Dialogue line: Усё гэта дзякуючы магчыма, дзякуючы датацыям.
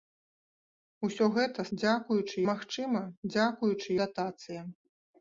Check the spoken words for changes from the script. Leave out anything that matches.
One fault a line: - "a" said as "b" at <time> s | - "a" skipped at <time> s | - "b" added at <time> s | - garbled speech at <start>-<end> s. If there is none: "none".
none